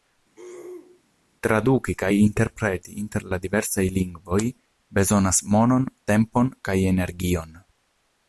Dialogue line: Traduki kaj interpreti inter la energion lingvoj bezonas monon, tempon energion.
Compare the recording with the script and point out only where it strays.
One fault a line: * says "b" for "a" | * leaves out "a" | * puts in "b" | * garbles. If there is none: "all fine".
* says "diversaj" for "energion"
* puts in "kaj"